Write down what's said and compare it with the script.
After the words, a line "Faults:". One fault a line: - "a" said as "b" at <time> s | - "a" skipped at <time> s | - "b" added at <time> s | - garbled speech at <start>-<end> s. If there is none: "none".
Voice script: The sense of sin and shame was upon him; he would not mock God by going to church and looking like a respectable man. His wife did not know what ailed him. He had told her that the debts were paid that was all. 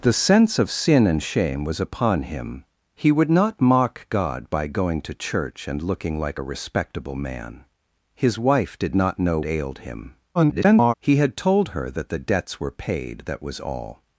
The sense of sin and shame was upon him; he would not mock God by going to church and looking like a respectable man. His wife did not know ailed him. [garbled] He had told her that the debts were paid that was all.
Faults:
- "what" skipped at 9.4 s
- garbled speech at 10.3-10.9 s